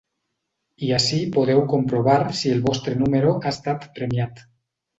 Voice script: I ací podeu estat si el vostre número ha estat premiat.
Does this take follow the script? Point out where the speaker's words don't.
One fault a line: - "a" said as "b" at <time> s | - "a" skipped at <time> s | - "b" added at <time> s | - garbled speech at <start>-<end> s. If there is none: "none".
- "estat" said as "comprovar" at 1.7 s